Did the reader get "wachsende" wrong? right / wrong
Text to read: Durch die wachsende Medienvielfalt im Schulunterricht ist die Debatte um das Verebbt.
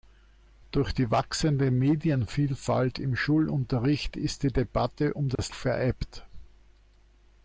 right